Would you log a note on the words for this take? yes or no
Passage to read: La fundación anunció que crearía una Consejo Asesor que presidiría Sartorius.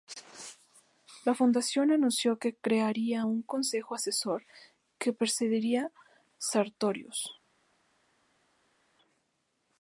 yes